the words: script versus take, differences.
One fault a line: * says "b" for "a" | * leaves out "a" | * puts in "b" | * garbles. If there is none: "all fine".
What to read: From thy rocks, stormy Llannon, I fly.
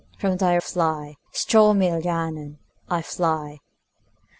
* says "fly" for "rocks"